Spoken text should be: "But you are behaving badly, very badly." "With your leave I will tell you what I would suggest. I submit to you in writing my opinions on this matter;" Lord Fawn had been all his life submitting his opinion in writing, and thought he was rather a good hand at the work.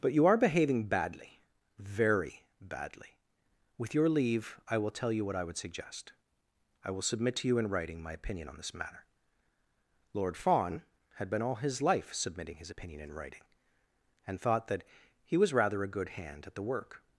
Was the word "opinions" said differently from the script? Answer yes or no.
yes